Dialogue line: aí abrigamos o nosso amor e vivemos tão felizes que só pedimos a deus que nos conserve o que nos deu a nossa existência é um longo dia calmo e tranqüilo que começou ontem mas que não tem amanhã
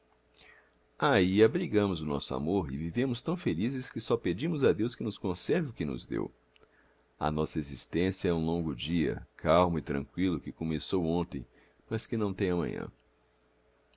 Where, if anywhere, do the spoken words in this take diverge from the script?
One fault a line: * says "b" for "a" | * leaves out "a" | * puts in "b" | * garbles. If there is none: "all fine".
all fine